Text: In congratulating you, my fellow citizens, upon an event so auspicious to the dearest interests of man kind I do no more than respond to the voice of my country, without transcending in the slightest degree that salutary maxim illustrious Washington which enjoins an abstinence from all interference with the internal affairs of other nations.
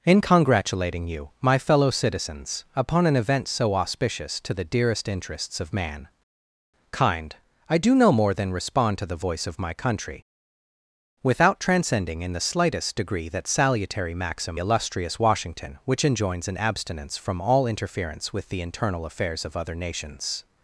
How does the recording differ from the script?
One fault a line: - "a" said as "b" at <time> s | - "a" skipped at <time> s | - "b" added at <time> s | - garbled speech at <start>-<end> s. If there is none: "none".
none